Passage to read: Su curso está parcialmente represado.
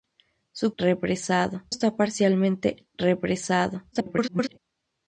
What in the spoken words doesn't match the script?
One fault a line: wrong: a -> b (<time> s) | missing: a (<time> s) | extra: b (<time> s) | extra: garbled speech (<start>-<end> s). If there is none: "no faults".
wrong: curso -> represado (0.8 s)
extra: garbled speech (3.9-4.6 s)